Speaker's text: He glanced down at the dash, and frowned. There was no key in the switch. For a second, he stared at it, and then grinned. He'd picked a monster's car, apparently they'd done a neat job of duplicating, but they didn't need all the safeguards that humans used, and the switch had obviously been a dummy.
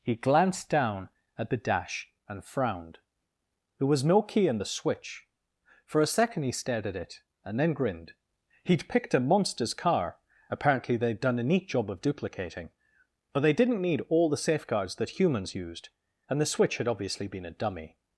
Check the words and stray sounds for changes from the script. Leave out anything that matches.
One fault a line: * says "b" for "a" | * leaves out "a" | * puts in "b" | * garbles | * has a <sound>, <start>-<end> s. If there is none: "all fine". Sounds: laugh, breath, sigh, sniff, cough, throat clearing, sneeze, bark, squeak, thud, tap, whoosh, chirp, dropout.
all fine